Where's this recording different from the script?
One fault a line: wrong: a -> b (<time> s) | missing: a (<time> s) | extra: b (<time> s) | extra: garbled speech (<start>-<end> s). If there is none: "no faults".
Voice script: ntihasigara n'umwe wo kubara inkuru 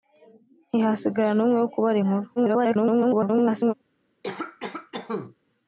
extra: garbled speech (2.4-3.7 s)